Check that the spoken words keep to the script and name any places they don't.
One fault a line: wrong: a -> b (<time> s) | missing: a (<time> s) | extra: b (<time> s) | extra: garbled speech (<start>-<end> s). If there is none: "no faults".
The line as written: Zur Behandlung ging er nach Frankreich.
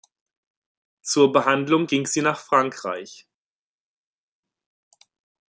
wrong: er -> sie (2.1 s)